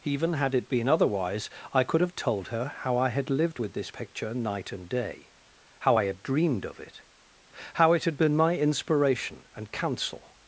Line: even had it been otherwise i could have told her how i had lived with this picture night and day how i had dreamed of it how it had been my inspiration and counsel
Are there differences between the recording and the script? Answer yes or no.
no